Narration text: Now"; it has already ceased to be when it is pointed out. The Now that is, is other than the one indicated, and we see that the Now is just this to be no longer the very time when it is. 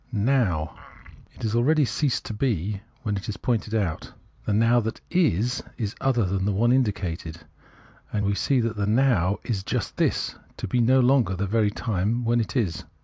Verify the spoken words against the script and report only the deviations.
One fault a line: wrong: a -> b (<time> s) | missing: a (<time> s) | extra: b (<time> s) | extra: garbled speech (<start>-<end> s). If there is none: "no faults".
no faults